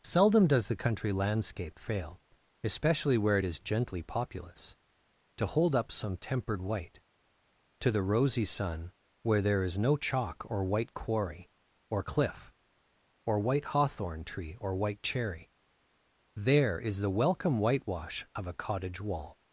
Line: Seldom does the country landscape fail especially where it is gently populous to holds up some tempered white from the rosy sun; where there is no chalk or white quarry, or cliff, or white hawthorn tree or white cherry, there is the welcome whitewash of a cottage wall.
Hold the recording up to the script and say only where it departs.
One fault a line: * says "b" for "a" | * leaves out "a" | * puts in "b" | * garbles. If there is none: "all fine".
* says "hold" for "holds"
* says "to" for "from"